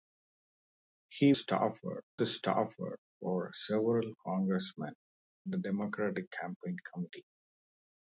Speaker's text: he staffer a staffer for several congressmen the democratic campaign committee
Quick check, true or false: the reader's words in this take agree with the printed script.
true